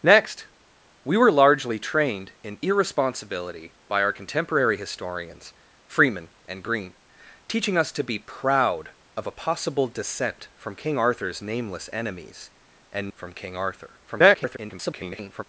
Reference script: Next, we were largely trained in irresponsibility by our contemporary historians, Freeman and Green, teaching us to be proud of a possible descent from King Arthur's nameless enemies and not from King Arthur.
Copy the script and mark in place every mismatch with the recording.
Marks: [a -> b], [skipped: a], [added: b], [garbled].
Next, we were largely trained in irresponsibility by our contemporary historians, Freeman and Green, teaching us to be proud of a possible descent from King Arthur's nameless enemies and [skipped: not] from King Arthur. [garbled]